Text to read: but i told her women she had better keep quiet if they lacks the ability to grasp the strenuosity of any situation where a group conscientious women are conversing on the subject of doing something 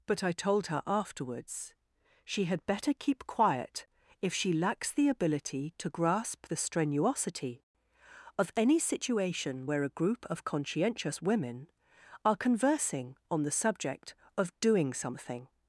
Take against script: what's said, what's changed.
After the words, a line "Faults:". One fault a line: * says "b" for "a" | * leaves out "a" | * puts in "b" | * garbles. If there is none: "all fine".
but i told her afterwards she had better keep quiet if she lacks the ability to grasp the strenuosity of any situation where a group of conscientious women are conversing on the subject of doing something
Faults:
* says "afterwards" for "women"
* says "she" for "they"
* puts in "of"